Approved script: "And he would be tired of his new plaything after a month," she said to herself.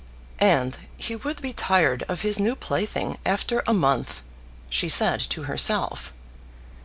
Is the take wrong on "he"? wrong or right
right